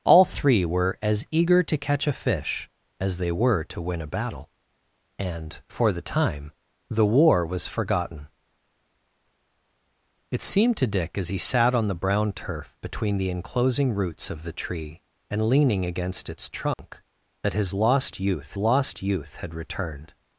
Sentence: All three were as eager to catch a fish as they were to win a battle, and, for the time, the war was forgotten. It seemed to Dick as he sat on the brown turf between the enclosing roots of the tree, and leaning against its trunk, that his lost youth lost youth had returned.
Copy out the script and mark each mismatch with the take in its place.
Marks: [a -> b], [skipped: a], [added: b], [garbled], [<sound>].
All three were as eager to catch a fish as they were to win a battle, and, for the time, the war was forgotten. It seemed to Dick as he sat on the brown turf between the enclosing roots of the tree, and leaning against its trunk, [dropout] that his lost youth lost youth had returned.